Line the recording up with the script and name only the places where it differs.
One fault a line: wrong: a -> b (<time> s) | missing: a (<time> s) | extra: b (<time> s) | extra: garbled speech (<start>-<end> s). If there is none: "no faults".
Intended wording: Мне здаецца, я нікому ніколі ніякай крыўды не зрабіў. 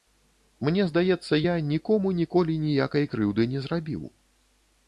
no faults